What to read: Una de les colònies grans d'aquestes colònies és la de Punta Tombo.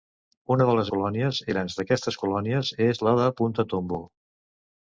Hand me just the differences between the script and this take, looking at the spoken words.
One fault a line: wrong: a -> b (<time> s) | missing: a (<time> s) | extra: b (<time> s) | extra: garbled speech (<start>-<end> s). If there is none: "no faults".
no faults